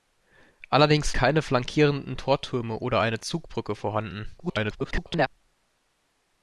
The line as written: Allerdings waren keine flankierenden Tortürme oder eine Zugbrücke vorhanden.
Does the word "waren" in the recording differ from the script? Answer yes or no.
yes